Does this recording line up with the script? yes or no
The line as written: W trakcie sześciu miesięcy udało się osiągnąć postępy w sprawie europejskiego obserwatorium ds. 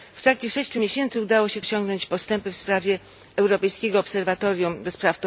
yes